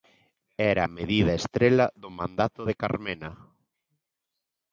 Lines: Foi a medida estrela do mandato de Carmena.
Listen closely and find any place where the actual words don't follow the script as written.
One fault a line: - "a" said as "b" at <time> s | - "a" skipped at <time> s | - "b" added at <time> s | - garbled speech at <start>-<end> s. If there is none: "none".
- "Foi" said as "Era" at 0.7 s